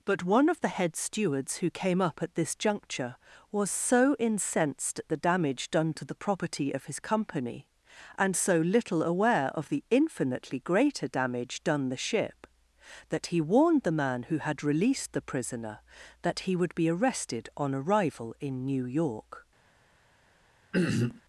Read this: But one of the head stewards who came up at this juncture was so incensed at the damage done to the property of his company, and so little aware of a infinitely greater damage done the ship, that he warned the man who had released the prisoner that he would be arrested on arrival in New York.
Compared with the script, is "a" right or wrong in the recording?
wrong